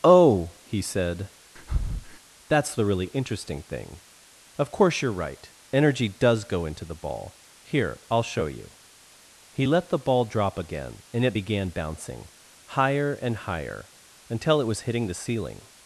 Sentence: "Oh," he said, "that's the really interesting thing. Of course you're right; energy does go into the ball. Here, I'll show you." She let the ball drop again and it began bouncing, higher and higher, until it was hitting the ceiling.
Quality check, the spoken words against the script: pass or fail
fail